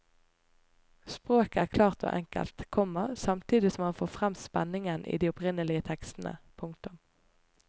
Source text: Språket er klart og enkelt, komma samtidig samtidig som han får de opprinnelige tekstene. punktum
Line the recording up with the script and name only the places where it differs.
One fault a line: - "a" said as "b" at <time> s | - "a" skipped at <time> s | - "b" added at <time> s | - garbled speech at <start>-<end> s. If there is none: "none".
- "samtidig" skipped at 3.7 s
- "frem spenningen i" added at 4.2 s